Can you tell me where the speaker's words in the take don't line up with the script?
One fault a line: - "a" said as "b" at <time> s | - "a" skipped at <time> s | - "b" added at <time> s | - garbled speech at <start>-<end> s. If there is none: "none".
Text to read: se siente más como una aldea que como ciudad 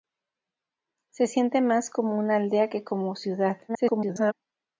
- garbled speech at 3.7-4.3 s